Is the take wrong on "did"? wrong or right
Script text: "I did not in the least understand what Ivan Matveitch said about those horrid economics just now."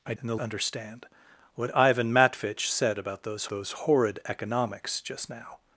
wrong